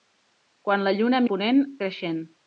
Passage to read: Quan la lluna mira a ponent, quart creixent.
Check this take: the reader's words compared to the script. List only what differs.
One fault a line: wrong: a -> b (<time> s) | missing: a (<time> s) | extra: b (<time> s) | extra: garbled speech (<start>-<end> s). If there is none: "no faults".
missing: mira (1.2 s)
missing: quart (1.6 s)